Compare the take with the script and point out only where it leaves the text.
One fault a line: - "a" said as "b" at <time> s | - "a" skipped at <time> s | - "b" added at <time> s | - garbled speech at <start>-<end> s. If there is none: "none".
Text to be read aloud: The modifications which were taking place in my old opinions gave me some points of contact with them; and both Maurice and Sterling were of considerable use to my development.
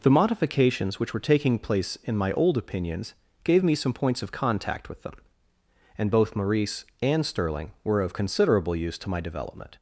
none